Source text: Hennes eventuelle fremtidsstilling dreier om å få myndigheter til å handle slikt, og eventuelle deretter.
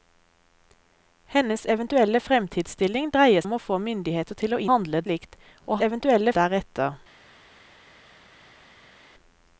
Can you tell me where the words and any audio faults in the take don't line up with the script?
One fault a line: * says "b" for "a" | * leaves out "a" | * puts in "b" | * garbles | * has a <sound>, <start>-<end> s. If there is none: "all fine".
all fine